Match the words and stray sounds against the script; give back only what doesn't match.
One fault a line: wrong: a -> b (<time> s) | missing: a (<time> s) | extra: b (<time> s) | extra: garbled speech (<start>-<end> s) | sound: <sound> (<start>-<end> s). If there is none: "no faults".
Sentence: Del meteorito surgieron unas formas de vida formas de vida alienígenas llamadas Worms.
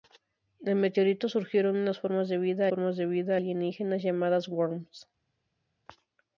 no faults